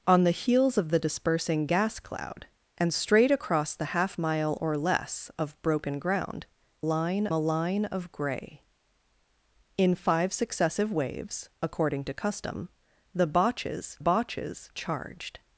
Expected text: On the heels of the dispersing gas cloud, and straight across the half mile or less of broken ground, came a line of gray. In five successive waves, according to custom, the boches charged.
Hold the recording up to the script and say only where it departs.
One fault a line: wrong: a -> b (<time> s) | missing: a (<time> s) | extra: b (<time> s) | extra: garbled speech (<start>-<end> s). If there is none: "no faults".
wrong: came -> line (6.8 s)
extra: boches (14.0 s)